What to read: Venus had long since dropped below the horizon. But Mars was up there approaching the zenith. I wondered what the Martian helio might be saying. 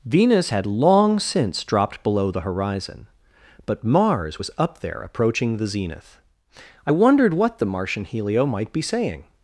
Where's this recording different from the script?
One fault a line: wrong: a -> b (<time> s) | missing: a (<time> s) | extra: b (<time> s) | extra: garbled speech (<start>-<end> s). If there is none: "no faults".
no faults